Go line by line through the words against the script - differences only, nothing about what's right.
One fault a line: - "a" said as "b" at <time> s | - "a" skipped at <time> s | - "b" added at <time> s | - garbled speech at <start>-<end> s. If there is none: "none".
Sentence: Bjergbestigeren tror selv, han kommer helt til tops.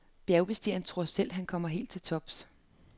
none